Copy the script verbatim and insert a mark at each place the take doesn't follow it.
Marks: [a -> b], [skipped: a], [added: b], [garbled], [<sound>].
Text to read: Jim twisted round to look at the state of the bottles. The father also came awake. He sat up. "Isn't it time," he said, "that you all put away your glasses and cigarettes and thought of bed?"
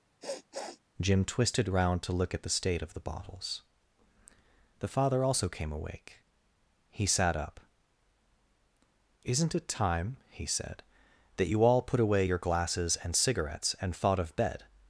[sniff] Jim twisted round to look at the state of the bottles. The father also came awake. He sat up. "Isn't it time," he said, "that you all put away your glasses and cigarettes and thought of bed?"